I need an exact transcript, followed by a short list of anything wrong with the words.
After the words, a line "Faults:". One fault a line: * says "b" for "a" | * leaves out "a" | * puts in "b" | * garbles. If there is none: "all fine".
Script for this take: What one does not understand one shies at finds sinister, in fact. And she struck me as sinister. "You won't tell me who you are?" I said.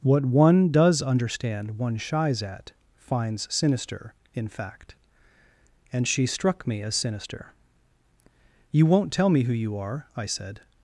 What one does understand one shies at finds sinister, in fact. And she struck me as sinister. "You won't tell me who you are?" I said.
Faults:
* leaves out "not"